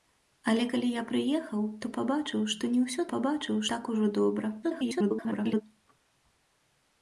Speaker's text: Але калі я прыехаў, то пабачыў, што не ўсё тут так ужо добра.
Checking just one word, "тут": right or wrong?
wrong